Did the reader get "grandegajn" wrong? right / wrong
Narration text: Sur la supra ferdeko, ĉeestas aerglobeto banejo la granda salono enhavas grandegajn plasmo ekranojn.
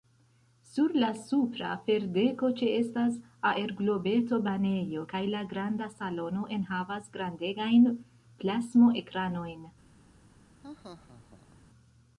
right